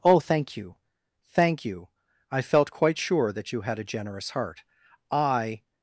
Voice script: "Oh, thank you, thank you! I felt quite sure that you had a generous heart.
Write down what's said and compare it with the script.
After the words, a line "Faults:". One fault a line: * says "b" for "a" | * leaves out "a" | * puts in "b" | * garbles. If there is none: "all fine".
"Oh, thank you, thank you! I felt quite sure that you had a generous heart. I
Faults:
* puts in "I"